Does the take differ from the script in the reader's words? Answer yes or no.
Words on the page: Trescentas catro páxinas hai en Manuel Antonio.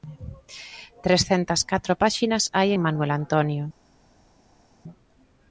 no